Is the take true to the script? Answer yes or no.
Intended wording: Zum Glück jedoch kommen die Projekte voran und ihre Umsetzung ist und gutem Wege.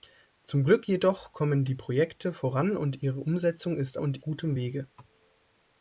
yes